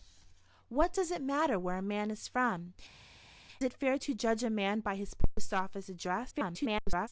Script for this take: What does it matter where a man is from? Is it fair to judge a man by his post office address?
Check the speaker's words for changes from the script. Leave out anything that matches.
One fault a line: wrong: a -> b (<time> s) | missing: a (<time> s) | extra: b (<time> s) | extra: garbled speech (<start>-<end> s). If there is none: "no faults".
missing: Is (2.7 s)
extra: garbled speech (6.3-7.1 s)